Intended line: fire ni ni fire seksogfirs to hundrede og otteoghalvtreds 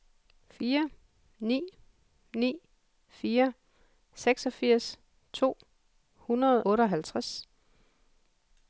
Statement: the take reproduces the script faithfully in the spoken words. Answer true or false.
false